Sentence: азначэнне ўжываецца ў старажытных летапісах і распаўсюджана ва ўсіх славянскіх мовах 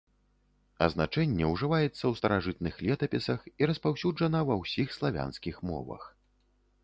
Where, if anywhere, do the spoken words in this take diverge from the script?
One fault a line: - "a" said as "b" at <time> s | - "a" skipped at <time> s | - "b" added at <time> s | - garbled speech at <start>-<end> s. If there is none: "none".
none